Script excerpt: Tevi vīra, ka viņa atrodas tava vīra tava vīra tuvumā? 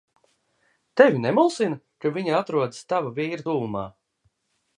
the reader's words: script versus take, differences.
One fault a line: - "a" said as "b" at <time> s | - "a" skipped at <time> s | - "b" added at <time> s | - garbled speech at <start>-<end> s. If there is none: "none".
- "vīra" said as "nemulsina" at 1.2 s
- "tava vīra" skipped at 3.5 s